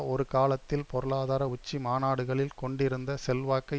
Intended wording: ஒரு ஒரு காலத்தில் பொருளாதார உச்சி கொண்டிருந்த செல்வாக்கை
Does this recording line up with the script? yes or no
no